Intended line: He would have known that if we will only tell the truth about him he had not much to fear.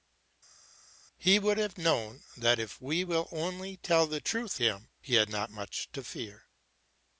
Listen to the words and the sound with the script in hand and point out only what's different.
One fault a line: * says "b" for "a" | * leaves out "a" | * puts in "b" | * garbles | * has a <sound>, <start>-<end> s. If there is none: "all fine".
* leaves out "about"